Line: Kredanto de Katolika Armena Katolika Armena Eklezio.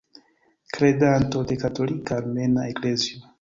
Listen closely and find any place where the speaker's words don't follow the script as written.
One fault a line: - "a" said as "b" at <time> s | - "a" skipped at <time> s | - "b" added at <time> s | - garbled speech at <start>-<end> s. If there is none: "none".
- "Katolika Armena" skipped at 2.7 s